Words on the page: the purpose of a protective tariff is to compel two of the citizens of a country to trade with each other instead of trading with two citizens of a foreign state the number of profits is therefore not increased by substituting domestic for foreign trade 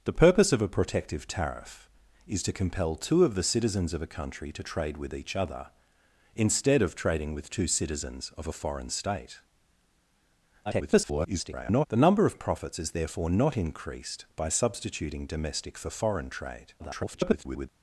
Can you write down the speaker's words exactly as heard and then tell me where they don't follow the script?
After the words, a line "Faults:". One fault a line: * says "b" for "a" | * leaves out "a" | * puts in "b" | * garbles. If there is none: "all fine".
the purpose of a protective tariff is to compel two of the citizens of a country to trade with each other instead of trading with two citizens of a foreign state [garbled] the number of profits is therefore not increased by substituting domestic for foreign trade [garbled]
Faults:
* garbles
* garbles